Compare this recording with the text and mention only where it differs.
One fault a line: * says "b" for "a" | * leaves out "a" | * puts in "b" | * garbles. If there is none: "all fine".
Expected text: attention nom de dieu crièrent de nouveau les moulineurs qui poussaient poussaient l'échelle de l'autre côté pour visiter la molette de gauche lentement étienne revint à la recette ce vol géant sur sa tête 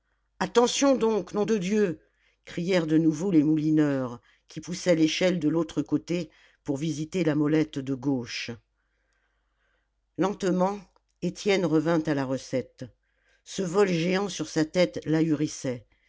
* puts in "donc"
* leaves out "poussaient"